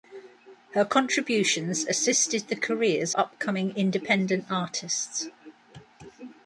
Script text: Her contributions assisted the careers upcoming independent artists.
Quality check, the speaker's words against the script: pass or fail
pass